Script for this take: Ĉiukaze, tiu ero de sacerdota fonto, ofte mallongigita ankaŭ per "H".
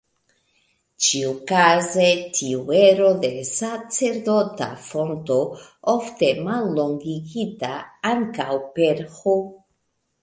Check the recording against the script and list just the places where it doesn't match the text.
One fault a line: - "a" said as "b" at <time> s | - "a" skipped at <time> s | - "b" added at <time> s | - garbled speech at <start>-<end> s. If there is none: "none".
none